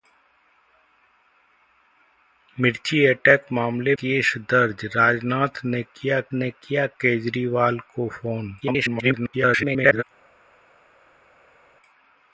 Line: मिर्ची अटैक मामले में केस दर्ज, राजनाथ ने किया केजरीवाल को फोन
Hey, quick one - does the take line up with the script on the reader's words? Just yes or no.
no